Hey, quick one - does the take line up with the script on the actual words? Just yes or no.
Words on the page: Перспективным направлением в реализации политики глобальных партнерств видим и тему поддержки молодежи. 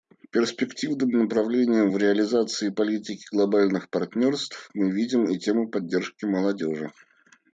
no